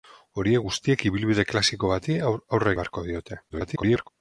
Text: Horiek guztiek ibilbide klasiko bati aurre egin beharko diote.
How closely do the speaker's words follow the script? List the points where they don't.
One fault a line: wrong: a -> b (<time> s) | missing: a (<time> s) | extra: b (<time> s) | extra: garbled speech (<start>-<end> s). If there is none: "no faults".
missing: egin (2.7 s)
extra: garbled speech (3.5-4.1 s)